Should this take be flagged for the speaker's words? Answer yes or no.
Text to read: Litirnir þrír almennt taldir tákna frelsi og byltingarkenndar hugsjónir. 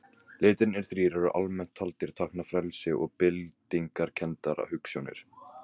yes